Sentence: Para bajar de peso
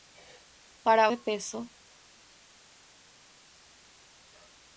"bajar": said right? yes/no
no